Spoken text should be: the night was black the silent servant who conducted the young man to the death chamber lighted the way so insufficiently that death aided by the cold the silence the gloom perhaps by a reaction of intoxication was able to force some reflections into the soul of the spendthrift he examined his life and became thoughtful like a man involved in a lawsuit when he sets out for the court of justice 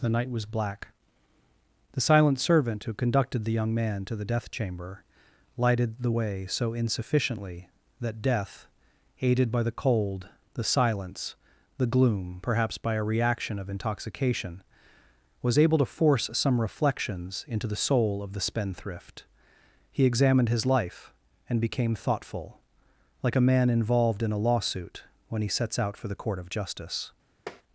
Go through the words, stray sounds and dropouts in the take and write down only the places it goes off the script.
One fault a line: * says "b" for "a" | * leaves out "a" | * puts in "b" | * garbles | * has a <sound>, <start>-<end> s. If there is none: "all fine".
* has a tap, 27.5-27.6 s